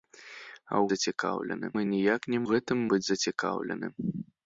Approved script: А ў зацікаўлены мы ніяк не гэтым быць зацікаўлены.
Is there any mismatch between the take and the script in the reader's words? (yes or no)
no